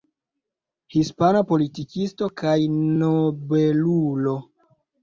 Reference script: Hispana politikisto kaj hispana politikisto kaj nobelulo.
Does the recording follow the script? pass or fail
fail